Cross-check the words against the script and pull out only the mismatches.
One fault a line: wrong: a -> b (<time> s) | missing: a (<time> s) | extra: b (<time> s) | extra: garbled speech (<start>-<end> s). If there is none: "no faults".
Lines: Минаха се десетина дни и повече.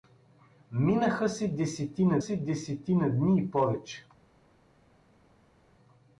extra: се десетина (2.2 s)